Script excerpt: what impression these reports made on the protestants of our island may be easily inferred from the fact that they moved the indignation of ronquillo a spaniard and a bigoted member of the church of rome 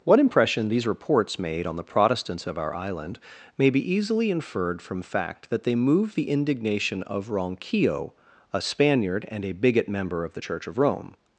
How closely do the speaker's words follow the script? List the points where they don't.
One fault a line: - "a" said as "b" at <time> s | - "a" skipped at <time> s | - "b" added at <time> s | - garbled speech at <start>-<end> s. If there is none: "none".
- "the" skipped at 5.0 s
- "bigoted" said as "bigot" at 9.5 s